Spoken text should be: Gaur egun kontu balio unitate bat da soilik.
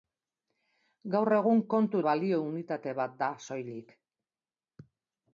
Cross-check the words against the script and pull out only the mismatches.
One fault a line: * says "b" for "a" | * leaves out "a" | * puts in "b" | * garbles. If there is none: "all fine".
all fine